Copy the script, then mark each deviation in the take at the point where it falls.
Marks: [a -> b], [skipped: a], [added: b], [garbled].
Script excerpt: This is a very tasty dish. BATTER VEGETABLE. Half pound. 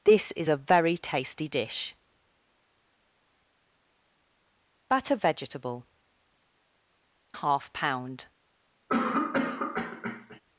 This is a very tasty dish. BATTER VEGETABLE. Half pound.